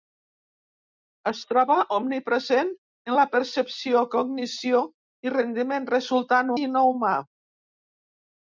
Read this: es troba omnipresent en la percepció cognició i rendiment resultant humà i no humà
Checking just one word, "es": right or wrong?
right